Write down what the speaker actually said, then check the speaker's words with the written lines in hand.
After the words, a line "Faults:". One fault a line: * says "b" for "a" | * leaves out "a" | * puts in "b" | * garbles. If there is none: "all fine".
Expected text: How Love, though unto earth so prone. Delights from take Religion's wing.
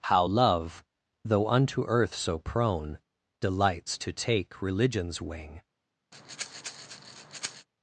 How Love, though unto earth so prone. Delights to take Religion's wing.
Faults:
* says "to" for "from"